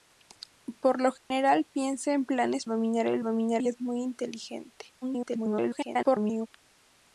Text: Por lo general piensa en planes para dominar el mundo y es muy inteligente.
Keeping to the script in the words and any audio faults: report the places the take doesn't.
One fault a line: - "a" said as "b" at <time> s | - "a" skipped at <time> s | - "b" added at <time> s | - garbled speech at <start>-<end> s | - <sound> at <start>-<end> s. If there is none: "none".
- dropout at 1.2-1.3 s
- "para" skipped at 2.6 s
- "mundo" said as "dominar" at 3.2 s
- garbled speech at 5.0-6.5 s